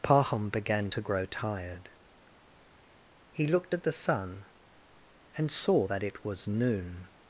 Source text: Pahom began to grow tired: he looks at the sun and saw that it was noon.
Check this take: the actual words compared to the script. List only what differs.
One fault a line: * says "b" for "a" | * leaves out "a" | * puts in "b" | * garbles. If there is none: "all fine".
* says "looked" for "looks"